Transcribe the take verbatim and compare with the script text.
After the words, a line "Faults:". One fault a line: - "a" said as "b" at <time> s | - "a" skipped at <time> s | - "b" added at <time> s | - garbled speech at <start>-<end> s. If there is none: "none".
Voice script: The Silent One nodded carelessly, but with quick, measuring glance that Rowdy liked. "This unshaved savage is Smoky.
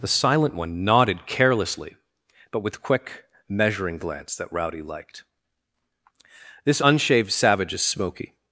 The Silent One nodded carelessly, but with quick, measuring glance that Rowdy liked. "This unshaved savage is Smoky.
Faults:
none